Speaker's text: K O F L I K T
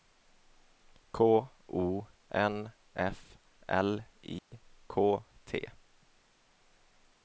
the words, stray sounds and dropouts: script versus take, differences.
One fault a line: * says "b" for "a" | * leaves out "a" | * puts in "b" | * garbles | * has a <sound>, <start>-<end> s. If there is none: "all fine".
* puts in "N"
* has a dropout, 4.4-4.5 s